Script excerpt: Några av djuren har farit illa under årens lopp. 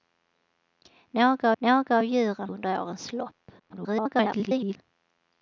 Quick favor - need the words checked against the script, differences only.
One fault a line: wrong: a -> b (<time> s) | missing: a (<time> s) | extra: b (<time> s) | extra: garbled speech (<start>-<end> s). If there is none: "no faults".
extra: några (1.6 s)
missing: har farit illa (2.5 s)
extra: garbled speech (3.6-4.8 s)